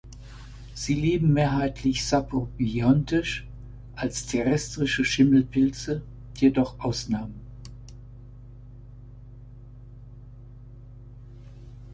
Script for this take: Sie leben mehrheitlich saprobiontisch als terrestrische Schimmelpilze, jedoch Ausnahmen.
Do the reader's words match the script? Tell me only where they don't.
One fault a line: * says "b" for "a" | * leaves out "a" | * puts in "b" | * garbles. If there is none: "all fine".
all fine